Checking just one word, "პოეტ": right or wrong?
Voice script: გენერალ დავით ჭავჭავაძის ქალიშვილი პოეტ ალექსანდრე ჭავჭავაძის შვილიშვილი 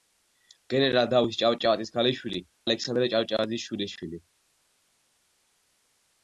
wrong